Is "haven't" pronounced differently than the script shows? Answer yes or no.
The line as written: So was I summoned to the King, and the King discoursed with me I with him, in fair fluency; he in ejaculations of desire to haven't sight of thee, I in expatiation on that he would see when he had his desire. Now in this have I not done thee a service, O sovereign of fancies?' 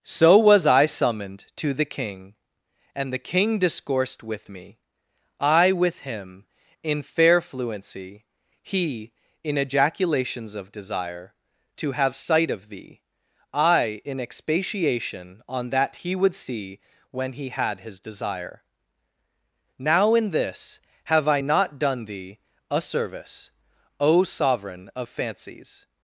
yes